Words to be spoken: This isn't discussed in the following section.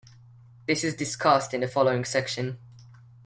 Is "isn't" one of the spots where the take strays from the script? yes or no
yes